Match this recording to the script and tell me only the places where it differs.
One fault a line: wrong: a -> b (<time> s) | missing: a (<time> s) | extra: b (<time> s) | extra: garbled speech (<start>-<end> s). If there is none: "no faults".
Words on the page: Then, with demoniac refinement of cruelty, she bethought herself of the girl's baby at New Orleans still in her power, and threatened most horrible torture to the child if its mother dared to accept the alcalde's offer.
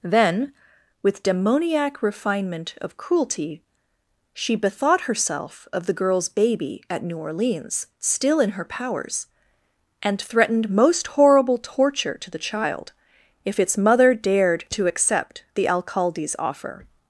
wrong: power -> powers (8.6 s)